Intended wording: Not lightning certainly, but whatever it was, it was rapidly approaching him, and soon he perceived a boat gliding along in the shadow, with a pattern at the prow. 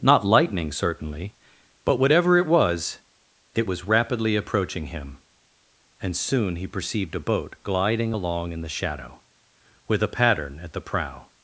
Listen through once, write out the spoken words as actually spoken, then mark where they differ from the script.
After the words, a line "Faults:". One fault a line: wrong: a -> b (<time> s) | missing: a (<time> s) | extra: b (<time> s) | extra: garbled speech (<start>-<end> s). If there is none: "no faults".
Not lightning certainly, but whatever it was, it was rapidly approaching him, and soon he perceived a boat gliding along in the shadow, with a pattern at the prow.
Faults:
no faults